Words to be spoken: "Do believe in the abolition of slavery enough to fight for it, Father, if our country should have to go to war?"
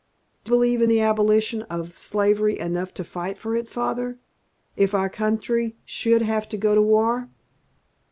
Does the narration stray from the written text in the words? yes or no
no